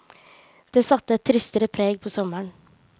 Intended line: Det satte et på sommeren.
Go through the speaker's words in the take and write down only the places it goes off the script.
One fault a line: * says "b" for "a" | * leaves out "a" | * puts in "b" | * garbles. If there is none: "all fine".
* puts in "tristere preg"